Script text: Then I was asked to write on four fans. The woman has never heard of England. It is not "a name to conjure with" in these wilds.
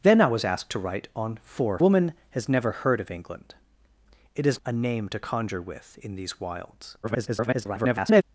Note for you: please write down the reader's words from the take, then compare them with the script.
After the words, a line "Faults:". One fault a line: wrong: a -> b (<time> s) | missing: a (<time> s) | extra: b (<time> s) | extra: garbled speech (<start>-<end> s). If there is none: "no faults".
Then I was asked to write on four woman has never heard of England. It is "a name to conjure with" in these wilds. [garbled]
Faults:
missing: fans The (1.8 s)
missing: not (4.6 s)
extra: garbled speech (7.0-8.2 s)